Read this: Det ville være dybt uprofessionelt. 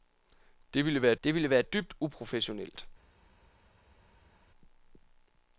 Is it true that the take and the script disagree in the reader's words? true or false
true